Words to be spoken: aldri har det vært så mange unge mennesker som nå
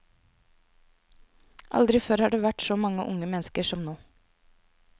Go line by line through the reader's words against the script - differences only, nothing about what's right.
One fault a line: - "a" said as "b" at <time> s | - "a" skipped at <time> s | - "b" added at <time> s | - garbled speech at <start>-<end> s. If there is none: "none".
- "før" added at 2.0 s